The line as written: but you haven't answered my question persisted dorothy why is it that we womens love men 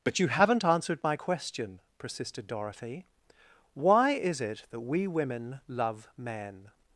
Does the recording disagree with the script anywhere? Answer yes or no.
yes